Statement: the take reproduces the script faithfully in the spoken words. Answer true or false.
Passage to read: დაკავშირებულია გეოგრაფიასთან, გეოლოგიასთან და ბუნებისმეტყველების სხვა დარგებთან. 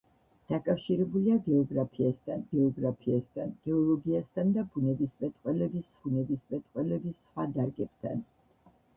false